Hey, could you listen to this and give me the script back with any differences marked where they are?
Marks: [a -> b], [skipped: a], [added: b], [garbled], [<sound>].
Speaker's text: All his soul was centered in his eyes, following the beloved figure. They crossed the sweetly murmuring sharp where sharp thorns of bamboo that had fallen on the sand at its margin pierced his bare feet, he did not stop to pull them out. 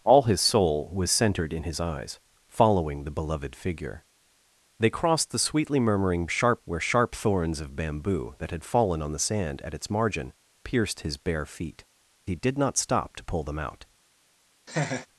All his soul was centered in his eyes, following the beloved figure. They crossed the sweetly murmuring sharp where sharp thorns of bamboo that had fallen on the sand at its margin pierced his bare feet, he did not stop to pull them out. [laugh]